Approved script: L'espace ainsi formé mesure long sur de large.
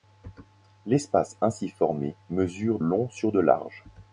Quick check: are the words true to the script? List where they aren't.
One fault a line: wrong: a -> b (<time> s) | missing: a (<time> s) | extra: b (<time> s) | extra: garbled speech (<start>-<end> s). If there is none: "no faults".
no faults